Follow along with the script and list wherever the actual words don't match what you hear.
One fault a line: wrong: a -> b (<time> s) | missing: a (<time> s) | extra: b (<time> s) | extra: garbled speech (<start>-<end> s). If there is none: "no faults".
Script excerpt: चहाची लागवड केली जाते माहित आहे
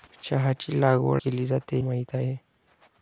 no faults